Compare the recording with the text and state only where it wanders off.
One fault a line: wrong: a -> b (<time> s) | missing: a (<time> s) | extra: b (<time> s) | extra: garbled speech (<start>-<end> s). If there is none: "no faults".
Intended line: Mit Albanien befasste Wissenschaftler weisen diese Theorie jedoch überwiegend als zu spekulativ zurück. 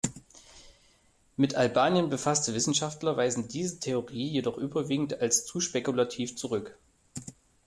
no faults